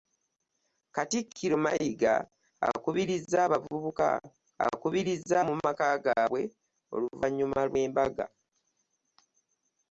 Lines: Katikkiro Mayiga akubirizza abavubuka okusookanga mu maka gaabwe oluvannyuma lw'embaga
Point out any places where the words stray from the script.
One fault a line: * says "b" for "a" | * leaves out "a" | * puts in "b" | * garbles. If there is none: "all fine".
* says "akubirizza" for "okusookanga"